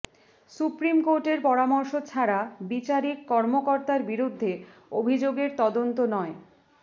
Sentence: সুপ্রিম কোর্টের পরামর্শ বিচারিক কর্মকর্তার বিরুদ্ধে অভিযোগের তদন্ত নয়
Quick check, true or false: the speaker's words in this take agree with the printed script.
false